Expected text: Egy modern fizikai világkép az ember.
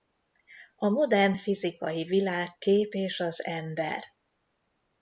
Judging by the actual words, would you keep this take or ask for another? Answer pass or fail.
fail